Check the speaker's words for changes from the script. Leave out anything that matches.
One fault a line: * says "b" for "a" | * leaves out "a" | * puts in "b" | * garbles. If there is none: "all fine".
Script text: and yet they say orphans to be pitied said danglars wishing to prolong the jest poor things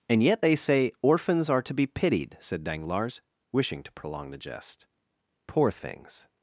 * puts in "are"